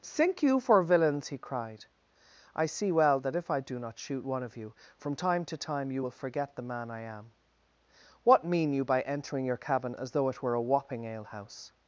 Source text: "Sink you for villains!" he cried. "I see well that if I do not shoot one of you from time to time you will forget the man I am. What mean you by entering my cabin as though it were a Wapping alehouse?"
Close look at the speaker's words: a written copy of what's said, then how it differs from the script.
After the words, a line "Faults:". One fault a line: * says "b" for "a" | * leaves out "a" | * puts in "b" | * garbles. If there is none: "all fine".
"Sink you for villains!" he cried. "I see well that if I do not shoot one of you from time to time you will forget the man I am. What mean you by entering your cabin as though it were a Wapping alehouse?"
Faults:
* says "your" for "my"